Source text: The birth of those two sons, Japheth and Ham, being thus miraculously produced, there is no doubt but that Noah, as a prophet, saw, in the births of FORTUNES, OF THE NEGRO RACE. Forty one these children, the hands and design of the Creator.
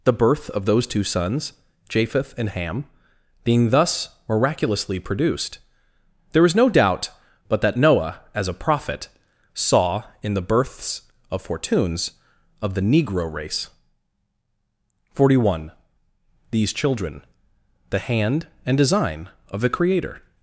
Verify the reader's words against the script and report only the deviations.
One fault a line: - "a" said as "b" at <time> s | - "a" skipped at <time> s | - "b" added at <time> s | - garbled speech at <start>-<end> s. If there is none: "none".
- "hands" said as "hand" at 18.0 s